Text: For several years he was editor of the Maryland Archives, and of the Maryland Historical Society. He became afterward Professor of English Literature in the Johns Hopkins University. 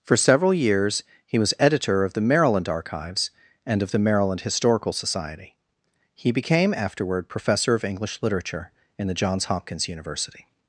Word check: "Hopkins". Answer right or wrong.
right